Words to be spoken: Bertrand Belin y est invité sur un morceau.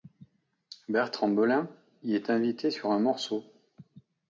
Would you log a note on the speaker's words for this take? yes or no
no